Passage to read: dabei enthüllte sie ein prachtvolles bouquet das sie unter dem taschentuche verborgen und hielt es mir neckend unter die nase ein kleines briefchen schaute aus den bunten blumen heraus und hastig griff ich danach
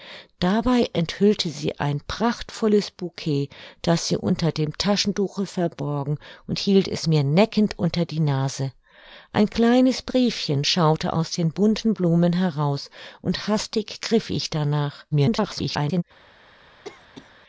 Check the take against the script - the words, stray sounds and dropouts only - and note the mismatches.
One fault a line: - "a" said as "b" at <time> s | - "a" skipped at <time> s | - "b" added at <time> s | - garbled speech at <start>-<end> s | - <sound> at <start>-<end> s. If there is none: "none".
- garbled speech at 15.1-16.0 s
- cough at 16.8-17.3 s